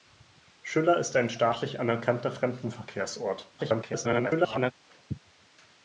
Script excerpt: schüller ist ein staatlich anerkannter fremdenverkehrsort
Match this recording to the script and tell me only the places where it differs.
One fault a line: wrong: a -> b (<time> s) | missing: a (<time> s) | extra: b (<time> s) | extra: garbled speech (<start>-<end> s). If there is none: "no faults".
extra: garbled speech (3.6-4.7 s)